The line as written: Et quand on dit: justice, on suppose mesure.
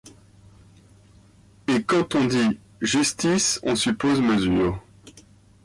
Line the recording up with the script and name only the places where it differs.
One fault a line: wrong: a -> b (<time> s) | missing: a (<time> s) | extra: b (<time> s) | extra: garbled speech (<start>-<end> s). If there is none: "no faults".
no faults